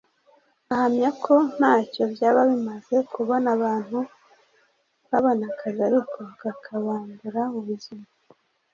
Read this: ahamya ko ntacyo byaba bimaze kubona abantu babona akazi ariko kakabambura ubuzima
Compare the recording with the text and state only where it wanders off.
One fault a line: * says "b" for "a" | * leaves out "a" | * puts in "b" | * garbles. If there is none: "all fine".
all fine